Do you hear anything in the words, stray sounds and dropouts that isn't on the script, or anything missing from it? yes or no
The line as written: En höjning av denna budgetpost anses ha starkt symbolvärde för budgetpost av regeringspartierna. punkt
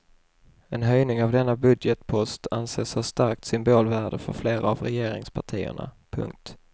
yes